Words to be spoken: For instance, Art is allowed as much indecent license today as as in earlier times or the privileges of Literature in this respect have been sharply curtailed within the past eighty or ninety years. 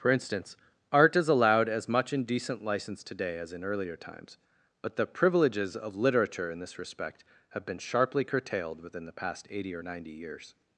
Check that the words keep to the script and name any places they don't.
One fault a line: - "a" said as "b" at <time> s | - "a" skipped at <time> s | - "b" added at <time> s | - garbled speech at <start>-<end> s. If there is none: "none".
- "as" skipped at 3.5 s
- "or" said as "but" at 4.8 s